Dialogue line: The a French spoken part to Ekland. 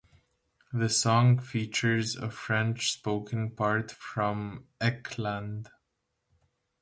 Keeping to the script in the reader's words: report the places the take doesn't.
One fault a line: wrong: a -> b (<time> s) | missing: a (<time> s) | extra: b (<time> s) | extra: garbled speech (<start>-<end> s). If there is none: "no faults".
extra: song features (0.9 s)
wrong: to -> from (3.9 s)